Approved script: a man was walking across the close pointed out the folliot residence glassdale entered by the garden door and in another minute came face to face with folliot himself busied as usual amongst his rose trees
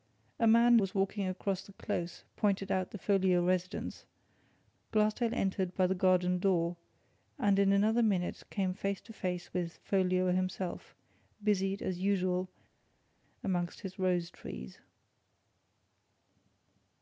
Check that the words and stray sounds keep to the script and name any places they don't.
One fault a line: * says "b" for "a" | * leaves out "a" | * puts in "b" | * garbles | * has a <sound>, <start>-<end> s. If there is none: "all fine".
all fine